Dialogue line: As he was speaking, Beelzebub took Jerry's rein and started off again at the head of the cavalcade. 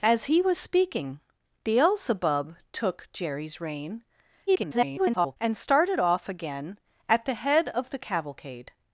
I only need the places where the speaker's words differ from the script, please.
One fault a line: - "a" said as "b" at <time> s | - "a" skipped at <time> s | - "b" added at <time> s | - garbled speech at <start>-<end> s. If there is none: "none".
- garbled speech at 4.5-5.4 s